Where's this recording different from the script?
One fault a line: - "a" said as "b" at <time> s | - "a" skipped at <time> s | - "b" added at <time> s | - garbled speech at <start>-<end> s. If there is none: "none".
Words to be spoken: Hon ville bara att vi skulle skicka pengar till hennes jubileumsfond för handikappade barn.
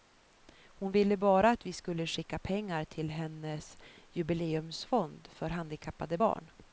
none